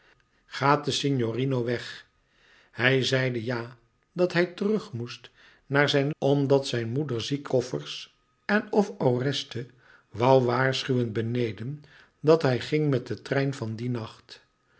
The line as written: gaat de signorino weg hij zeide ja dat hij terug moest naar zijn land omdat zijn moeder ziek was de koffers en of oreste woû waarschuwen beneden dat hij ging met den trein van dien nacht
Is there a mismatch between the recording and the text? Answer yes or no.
yes